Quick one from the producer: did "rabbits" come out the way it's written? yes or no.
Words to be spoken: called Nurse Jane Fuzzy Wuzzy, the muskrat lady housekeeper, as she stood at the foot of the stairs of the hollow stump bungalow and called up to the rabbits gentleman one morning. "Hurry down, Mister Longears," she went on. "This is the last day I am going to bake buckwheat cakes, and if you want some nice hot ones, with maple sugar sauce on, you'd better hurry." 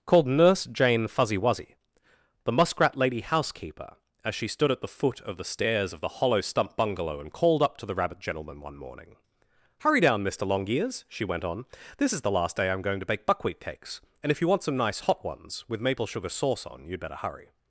no